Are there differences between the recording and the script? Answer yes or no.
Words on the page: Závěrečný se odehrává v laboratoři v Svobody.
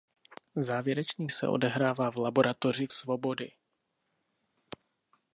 no